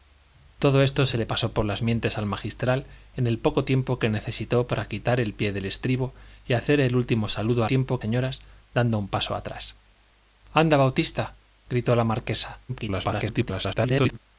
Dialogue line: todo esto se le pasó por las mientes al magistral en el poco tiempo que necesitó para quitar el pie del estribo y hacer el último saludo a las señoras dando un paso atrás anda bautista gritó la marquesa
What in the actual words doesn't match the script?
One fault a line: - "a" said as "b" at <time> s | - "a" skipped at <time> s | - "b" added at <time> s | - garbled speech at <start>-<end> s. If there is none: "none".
- "las" said as "tiempo" at 7.7 s
- garbled speech at 12.7-14.2 s